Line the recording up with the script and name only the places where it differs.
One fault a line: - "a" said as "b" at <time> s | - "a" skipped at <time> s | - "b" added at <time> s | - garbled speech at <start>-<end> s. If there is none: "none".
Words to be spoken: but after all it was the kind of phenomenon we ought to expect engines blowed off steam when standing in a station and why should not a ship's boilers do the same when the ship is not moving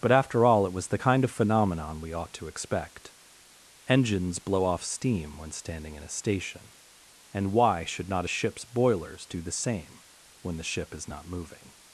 - "blowed" said as "blow" at 4.4 s